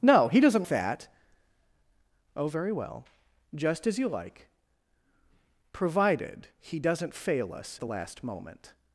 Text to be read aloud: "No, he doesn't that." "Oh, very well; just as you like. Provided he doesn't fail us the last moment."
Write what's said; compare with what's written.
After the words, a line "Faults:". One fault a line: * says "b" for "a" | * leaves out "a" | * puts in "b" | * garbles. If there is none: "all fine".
"No, he doesn't that." "Oh, very well; just as you like. Provided he doesn't fail us the last moment."
Faults:
all fine